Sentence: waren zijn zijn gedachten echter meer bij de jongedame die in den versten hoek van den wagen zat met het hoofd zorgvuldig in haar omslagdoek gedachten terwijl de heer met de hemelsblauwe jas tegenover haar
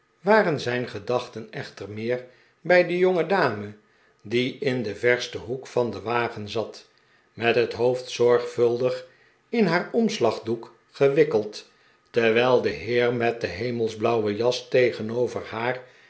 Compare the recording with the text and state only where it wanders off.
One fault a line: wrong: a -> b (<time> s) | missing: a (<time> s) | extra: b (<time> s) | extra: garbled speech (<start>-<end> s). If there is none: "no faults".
missing: zijn (0.9 s)
wrong: gedachten -> gewikkeld (10.9 s)